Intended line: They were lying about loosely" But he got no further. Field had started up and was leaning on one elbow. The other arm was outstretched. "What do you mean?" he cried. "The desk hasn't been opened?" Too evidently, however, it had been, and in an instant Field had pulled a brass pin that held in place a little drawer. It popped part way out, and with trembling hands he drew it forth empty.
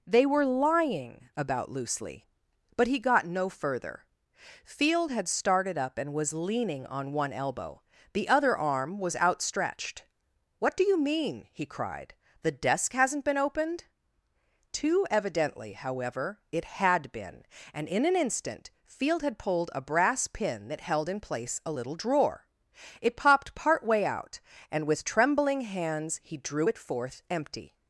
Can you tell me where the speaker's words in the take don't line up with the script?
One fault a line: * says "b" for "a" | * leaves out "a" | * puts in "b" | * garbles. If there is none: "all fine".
all fine